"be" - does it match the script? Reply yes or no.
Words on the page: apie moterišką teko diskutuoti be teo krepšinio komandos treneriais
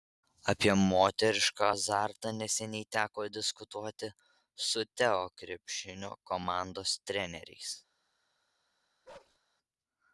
no